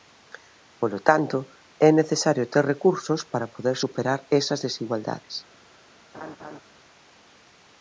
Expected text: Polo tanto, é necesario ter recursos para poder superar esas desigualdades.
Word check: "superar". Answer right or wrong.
right